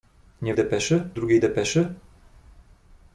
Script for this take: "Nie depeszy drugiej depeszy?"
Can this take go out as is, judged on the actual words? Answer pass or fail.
pass